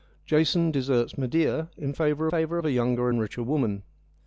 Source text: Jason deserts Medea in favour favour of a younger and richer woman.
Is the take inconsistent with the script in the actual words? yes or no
no